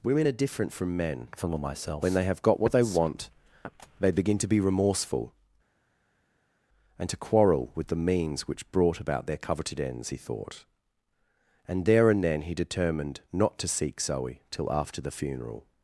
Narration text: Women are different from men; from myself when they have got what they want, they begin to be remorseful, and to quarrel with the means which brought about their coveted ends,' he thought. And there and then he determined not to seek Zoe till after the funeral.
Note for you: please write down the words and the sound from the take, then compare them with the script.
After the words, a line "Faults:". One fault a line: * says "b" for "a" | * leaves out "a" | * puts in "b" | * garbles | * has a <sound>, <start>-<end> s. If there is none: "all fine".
Women are different from men; from myself when they have got what they want, they begin to be remorseful, and to quarrel with the means which brought about their coveted ends,' he thought. And there and then he determined not to seek Zoe till after the funeral.
Faults:
all fine